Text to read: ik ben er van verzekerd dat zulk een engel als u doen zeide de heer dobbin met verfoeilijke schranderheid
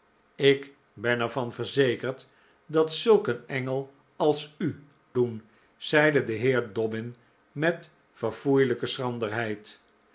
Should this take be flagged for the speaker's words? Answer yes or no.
no